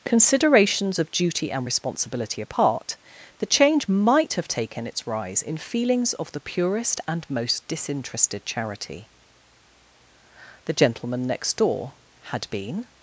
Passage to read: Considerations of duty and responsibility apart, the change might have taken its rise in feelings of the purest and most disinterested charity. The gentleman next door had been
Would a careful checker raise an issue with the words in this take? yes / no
no